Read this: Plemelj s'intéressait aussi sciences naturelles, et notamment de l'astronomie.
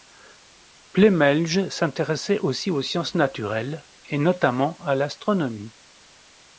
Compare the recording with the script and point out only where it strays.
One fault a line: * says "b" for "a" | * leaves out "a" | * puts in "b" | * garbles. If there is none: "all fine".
* puts in "aux"
* says "à" for "de"